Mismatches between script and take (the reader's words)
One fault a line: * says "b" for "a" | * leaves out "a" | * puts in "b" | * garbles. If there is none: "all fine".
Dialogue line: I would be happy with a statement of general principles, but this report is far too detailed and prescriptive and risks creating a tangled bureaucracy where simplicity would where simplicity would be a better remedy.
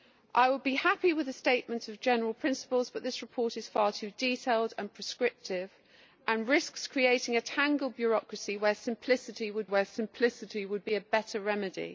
all fine